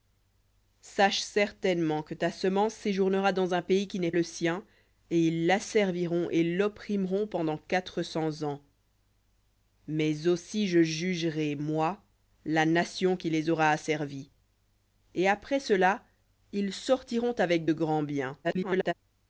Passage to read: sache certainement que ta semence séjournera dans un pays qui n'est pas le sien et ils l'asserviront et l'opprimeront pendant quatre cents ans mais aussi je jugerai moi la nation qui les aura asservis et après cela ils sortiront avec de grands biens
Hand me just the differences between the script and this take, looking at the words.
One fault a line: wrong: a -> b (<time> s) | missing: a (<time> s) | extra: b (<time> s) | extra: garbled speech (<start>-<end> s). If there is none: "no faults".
missing: pas (4.1 s)
extra: garbled speech (18.4-18.9 s)